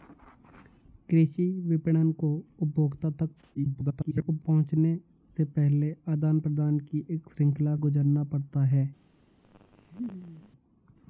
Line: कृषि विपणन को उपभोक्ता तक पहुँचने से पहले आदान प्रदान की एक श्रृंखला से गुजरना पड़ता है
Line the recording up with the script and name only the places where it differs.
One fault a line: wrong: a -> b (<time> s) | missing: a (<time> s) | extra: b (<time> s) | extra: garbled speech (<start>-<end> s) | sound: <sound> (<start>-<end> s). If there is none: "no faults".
extra: garbled speech (3.5-4.4 s)
missing: से (7.8 s)
sound: laugh (9.4-10.5 s)